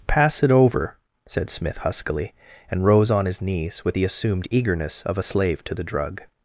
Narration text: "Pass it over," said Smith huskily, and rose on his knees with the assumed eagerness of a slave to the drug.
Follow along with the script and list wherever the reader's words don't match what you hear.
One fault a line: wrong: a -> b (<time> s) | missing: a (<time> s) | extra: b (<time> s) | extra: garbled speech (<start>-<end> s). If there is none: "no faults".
no faults